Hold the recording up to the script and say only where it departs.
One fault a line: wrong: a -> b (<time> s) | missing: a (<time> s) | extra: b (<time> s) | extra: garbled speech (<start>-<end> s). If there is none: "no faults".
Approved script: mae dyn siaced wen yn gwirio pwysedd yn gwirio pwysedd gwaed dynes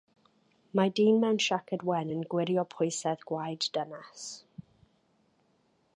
extra: mewn (1.2 s)
missing: yn gwirio pwysedd (3.3 s)